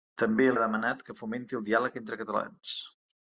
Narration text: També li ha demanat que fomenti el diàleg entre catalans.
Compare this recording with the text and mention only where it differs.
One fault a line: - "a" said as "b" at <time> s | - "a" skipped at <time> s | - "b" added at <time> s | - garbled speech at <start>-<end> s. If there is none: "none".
- "li" skipped at 0.5 s